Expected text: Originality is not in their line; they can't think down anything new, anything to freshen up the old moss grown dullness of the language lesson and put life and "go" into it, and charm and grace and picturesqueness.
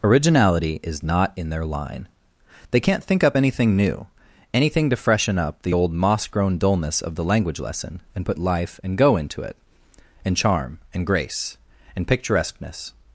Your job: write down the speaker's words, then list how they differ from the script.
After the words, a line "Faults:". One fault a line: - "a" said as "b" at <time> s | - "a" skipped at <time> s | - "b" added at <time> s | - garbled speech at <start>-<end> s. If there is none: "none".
Originality is not in their line; they can't think up anything new, anything to freshen up the old moss grown dullness of the language lesson and put life and "go" into it, and charm and grace and picturesqueness.
Faults:
- "down" said as "up" at 3.2 s